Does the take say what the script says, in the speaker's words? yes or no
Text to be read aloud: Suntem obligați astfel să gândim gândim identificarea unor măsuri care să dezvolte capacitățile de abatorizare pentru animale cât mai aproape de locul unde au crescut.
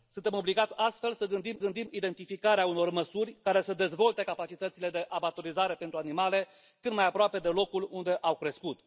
yes